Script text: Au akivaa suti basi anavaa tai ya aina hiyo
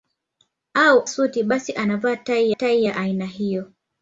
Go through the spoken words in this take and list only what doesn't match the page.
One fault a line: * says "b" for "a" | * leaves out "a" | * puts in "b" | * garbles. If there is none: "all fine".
* leaves out "akivaa"
* puts in "tai"